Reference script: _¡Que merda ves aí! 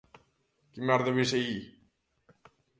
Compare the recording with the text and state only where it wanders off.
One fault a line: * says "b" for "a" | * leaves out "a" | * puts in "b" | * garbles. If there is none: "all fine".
all fine